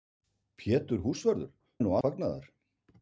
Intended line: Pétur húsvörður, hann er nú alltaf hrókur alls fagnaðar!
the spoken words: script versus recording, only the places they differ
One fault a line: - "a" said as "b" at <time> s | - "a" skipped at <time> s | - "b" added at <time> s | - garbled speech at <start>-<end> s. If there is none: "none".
- "hann" skipped at 1.5 s
- "alltaf hrókur alls" skipped at 2.0 s